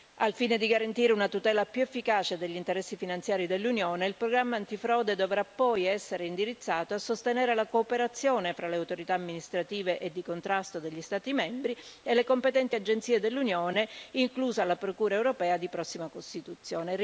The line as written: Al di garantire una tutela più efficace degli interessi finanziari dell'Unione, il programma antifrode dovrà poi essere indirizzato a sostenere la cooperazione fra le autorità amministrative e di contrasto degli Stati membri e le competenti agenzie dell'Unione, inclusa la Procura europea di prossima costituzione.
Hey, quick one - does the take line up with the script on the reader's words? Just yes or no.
no